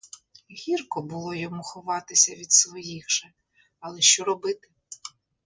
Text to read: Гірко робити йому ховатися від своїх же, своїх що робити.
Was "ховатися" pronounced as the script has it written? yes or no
yes